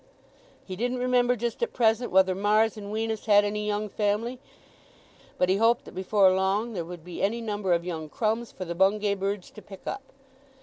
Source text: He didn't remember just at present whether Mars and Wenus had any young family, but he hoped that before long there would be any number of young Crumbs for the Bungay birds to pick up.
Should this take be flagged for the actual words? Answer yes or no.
no